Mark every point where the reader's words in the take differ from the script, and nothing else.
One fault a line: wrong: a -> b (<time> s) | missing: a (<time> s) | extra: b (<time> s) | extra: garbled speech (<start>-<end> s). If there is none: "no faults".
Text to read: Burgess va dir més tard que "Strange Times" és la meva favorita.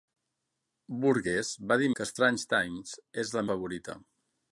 missing: més tard (1.9 s)
missing: meva (3.5 s)